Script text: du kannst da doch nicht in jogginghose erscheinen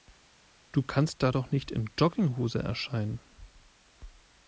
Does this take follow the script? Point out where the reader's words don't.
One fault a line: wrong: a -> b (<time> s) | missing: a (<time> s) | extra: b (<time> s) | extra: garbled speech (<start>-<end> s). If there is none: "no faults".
no faults